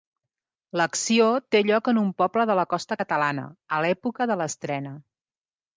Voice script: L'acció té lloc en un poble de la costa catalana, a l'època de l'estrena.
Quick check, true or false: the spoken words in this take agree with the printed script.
true